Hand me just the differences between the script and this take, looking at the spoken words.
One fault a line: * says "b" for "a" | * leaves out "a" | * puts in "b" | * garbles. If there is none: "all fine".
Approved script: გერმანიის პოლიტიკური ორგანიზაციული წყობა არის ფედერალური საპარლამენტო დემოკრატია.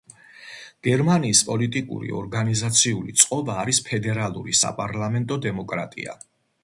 all fine